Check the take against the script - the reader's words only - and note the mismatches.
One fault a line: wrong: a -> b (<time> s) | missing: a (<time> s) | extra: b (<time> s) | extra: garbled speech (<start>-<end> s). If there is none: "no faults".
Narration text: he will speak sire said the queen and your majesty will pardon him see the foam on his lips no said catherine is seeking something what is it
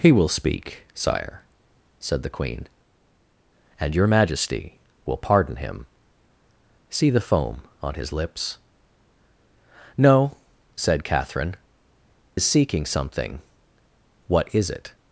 no faults